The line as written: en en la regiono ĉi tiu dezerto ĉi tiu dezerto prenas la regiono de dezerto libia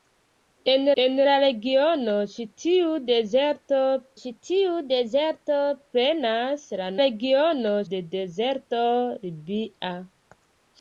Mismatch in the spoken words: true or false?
false